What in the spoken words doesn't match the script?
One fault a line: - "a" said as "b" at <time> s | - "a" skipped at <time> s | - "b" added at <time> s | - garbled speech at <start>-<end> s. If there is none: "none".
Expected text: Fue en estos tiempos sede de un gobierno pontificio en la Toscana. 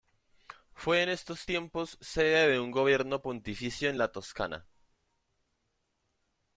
none